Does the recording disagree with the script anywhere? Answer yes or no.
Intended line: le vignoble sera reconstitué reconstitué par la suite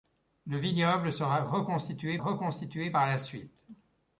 no